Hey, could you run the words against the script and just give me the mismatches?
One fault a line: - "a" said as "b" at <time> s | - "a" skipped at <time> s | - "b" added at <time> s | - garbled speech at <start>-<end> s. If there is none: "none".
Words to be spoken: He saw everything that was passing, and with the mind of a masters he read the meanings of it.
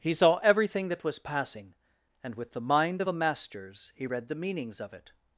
none